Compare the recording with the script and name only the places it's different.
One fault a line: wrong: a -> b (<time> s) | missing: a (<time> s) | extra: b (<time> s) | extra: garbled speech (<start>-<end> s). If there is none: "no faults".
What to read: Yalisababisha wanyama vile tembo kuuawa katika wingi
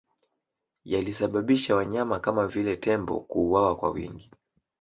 extra: kama (2.2 s)
wrong: katika -> kwa (3.7 s)